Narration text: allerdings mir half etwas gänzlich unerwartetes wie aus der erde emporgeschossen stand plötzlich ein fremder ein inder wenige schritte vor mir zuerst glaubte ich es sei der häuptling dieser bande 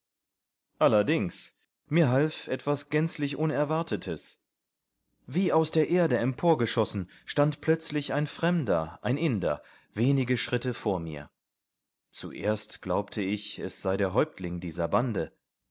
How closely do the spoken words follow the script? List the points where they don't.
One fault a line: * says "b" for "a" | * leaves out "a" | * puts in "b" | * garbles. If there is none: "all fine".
all fine